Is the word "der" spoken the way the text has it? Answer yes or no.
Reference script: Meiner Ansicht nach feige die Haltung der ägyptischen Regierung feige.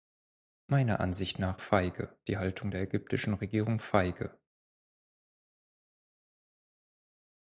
yes